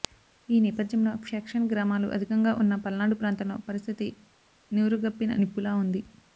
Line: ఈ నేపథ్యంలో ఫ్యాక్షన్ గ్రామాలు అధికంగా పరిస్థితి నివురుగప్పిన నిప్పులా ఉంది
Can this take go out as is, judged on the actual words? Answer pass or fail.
fail